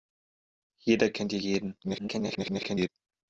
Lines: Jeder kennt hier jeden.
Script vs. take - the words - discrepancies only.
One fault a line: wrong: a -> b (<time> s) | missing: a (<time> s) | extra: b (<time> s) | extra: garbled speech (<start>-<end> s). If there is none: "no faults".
extra: garbled speech (1.8-2.9 s)